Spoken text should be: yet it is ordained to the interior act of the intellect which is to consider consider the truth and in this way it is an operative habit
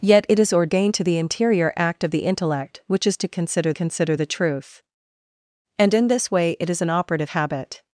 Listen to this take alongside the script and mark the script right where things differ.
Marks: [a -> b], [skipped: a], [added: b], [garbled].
yet it is ordained to the interior act of the intellect which is to consider consider the truth and in this way it is an operative habit